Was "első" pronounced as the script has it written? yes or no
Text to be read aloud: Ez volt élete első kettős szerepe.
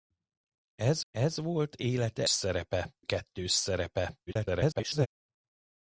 no